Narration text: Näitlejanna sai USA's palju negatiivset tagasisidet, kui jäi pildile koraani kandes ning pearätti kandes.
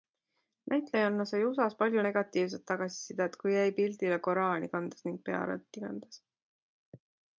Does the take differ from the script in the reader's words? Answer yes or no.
no